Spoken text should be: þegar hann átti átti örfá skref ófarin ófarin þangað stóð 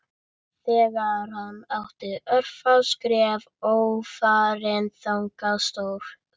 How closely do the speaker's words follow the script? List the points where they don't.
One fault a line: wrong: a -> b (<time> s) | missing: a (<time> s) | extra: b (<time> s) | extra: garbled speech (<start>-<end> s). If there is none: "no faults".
missing: átti (2.1 s)
missing: ófarin (4.9 s)